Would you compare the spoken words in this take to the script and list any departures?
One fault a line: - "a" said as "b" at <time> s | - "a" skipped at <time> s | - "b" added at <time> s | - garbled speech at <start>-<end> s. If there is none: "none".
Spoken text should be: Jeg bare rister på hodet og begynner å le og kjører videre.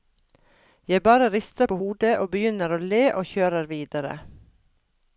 none